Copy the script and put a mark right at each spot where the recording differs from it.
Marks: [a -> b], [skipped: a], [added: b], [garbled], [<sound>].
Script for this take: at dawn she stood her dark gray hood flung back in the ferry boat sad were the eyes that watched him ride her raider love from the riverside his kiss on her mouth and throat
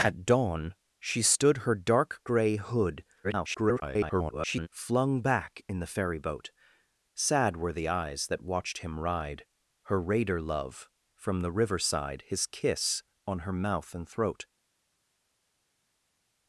at dawn she stood her dark gray hood [garbled] flung back in the ferry boat sad were the eyes that watched him ride her raider love from the riverside his kiss on her mouth and throat